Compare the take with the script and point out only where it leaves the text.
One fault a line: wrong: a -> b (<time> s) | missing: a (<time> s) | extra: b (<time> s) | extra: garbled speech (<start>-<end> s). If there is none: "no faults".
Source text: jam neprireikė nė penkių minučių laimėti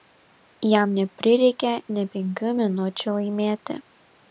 no faults